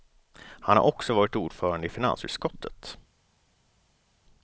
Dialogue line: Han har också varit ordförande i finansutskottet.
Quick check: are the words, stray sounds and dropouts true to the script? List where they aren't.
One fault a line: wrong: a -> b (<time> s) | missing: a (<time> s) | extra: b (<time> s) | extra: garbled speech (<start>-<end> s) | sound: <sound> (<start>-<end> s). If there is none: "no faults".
no faults